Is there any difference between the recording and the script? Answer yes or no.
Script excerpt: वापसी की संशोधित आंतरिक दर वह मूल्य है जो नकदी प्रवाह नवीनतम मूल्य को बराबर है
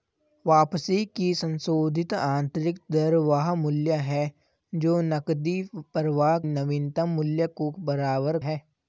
no